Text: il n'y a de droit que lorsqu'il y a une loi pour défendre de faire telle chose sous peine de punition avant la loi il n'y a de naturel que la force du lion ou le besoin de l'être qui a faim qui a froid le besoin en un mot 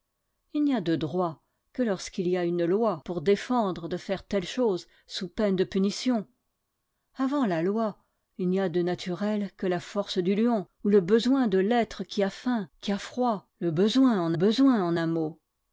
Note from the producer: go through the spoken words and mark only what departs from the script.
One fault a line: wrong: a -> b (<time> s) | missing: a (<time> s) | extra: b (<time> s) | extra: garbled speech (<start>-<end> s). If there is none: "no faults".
extra: besoin en (14.3 s)